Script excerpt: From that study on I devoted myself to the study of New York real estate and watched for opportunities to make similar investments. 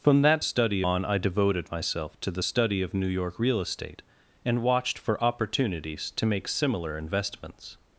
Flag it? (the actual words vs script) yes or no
no